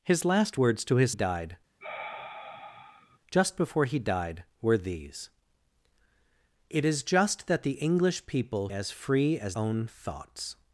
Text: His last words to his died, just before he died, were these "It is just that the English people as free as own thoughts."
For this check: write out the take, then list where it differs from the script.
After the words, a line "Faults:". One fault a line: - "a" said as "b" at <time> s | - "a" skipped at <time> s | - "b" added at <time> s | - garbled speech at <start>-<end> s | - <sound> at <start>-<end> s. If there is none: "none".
His last words to his died, just before he died, were these "It is just that the English people as free as own thoughts."
Faults:
- sigh at 1.8-3.2 s